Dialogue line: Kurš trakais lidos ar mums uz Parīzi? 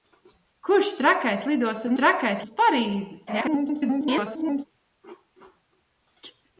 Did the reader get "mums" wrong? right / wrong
wrong